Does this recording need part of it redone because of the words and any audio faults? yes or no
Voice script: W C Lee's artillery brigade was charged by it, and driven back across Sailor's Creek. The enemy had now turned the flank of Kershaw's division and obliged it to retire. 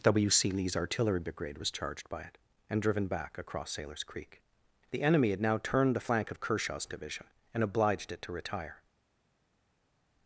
no